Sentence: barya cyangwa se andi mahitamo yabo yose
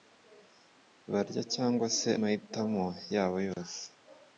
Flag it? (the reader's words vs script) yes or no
yes